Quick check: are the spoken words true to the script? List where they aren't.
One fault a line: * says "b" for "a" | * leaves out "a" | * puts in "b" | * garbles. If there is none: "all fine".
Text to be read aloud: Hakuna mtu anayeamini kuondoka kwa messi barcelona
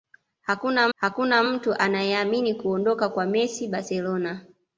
* puts in "hakuna"